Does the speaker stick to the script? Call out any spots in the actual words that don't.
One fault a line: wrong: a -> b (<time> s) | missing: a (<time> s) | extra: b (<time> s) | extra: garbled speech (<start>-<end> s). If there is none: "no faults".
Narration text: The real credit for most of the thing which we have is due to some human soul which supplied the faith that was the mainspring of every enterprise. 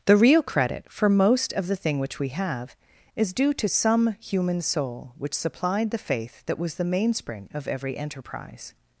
no faults